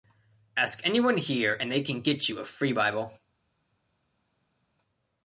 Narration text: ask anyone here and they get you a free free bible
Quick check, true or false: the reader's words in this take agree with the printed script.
false